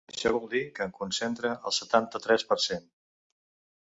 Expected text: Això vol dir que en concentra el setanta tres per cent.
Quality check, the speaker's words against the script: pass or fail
pass